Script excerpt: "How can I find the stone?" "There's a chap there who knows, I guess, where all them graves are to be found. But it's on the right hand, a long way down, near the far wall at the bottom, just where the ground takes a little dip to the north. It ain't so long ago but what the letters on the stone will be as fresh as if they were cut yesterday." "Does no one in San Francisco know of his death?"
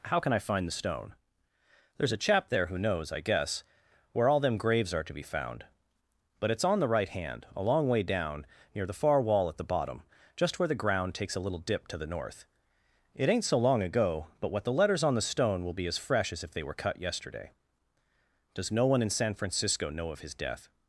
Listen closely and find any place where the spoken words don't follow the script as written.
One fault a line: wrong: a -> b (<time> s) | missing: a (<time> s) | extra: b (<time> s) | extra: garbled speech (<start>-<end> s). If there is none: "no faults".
no faults